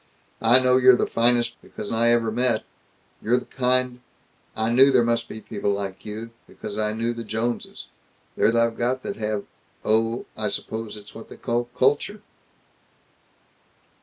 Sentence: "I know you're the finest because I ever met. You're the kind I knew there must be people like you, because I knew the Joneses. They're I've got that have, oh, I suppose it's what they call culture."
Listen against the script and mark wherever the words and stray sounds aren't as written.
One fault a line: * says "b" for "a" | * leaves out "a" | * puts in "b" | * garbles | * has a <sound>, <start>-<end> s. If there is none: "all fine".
all fine